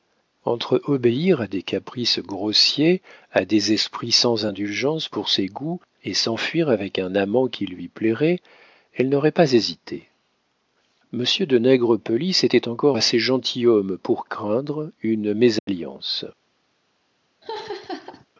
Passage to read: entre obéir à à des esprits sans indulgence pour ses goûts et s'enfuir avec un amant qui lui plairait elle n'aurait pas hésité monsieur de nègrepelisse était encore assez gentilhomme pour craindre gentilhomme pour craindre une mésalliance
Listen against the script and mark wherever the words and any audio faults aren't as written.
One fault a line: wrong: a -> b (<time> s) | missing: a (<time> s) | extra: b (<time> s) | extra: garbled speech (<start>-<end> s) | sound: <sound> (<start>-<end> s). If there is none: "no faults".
extra: des caprices grossiers (1.5 s)
missing: gentilhomme pour craindre (14.9 s)
sound: dropout (15.6-15.7 s)
sound: laugh (17.4-18.3 s)